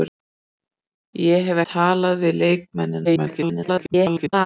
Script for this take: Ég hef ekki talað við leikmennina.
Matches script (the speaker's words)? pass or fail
fail